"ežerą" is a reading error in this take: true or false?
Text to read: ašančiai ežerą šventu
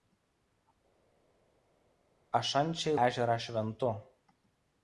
false